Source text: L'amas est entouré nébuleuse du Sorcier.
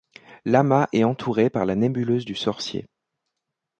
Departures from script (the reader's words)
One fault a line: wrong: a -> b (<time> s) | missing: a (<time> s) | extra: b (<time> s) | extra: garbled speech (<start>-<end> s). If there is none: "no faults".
extra: par la (1.5 s)